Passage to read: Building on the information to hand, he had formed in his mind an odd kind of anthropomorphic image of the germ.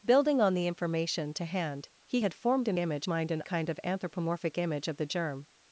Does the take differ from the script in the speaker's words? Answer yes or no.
yes